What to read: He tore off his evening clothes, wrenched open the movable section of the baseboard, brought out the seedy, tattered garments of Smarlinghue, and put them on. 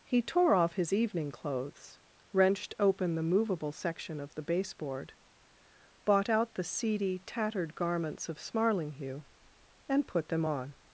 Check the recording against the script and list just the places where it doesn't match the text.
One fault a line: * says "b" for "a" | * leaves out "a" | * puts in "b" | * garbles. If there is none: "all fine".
* says "bought" for "brought"